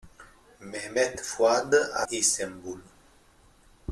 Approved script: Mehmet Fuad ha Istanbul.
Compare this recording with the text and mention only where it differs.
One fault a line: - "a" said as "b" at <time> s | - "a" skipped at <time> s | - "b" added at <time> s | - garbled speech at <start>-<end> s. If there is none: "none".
none